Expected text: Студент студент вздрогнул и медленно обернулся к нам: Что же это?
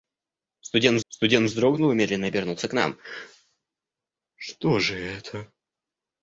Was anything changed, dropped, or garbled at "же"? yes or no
no